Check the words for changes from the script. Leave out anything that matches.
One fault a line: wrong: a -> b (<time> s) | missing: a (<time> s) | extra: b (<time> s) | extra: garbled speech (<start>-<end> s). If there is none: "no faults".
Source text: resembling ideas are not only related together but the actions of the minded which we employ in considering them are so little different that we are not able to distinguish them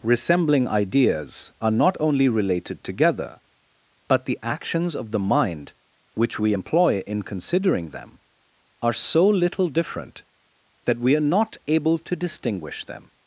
wrong: minded -> mind (5.2 s)